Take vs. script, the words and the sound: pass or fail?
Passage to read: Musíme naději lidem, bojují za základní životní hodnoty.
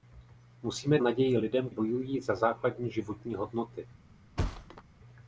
fail